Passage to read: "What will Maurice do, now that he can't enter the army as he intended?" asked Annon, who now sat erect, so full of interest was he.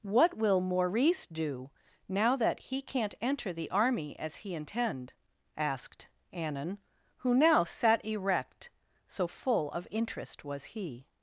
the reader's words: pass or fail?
fail